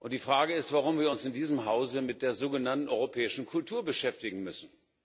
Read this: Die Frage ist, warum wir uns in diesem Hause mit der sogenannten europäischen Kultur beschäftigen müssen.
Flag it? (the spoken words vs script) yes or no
no